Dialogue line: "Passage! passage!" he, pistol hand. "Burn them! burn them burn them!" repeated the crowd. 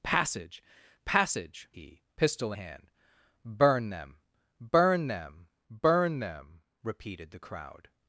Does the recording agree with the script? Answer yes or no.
yes